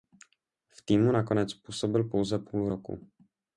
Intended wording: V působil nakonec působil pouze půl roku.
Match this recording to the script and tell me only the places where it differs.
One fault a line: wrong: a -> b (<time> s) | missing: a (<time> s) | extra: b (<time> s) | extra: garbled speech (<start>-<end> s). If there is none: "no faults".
wrong: působil -> týmu (0.8 s)